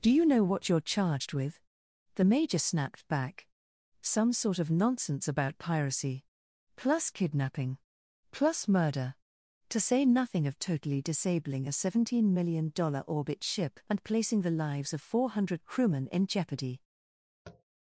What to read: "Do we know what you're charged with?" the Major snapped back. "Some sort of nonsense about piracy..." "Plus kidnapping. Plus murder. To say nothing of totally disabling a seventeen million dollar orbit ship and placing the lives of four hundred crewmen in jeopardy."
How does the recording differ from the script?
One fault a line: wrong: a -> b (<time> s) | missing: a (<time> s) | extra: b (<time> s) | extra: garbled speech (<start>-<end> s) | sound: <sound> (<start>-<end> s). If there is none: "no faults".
wrong: we -> you (0.1 s)
sound: tap (17.4-17.6 s)